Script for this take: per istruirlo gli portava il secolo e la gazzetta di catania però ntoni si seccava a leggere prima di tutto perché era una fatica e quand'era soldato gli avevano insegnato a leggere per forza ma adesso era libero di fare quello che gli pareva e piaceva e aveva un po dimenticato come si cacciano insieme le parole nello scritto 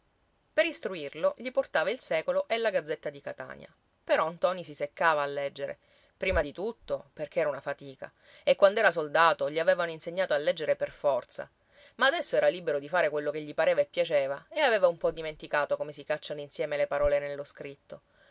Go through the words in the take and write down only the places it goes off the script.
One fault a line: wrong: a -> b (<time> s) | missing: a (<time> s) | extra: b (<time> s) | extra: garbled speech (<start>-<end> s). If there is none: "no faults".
no faults